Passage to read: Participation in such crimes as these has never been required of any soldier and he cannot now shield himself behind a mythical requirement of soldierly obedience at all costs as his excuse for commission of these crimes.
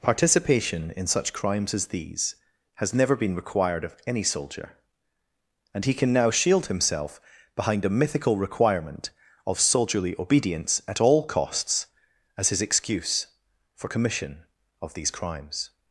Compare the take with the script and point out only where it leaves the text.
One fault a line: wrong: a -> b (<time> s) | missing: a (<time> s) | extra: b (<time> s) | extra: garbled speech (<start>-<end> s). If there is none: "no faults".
wrong: cannot -> can (5.9 s)